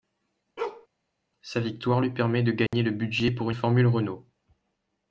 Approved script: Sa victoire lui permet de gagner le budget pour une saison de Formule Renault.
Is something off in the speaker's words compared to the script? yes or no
yes